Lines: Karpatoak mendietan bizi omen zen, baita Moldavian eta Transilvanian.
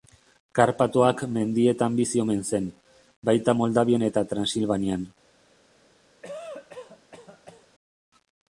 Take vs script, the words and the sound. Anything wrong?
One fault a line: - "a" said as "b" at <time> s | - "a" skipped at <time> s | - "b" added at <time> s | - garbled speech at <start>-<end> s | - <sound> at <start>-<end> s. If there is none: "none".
- cough at 6.2-7.7 s